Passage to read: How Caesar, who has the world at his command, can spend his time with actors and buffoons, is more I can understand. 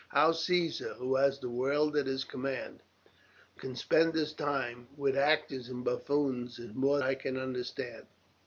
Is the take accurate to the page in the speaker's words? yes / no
yes